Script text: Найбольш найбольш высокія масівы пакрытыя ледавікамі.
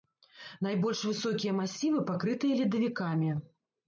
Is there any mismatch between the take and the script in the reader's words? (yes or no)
yes